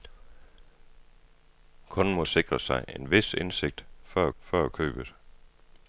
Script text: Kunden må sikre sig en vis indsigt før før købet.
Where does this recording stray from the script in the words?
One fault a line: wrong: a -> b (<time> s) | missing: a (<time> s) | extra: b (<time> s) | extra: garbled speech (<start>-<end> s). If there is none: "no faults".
no faults